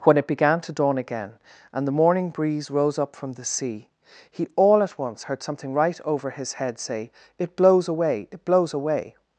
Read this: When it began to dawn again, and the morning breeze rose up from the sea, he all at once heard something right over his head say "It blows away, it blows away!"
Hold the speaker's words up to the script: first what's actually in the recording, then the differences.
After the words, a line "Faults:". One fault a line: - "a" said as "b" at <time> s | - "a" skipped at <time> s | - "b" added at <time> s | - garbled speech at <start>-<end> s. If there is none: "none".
When it began to dawn again, and the morning breeze rose up from the sea, he all at once heard something right over his head say "It blows away, it blows away!"
Faults:
none